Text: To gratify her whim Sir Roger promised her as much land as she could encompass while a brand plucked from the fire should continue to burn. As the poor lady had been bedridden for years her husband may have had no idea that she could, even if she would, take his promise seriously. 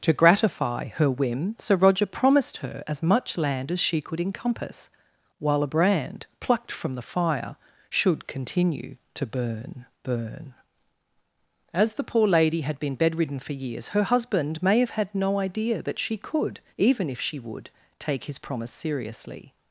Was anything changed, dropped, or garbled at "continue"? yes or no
no